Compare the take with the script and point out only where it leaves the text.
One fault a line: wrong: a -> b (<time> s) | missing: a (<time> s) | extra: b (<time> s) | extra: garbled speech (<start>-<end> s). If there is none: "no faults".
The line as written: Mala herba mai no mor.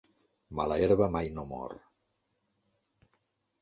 no faults